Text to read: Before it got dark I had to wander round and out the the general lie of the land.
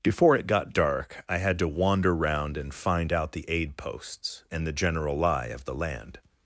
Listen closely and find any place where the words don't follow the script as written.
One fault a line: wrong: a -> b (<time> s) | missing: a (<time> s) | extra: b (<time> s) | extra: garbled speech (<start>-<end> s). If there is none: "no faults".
extra: find (2.7 s)
extra: aid posts and (3.5 s)